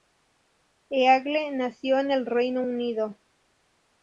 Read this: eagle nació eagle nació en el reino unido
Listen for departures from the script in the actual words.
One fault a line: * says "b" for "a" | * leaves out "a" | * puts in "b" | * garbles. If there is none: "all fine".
* leaves out "eagle nació"